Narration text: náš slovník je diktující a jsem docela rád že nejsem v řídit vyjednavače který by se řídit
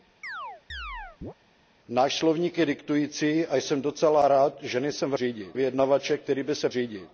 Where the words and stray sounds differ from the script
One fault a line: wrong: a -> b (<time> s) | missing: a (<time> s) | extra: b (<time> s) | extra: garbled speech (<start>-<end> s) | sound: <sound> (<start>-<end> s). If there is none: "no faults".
sound: chirp (0.2-1.3 s)